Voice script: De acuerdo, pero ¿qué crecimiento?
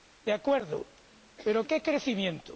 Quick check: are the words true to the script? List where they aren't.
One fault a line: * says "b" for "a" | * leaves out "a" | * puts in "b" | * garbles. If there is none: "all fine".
all fine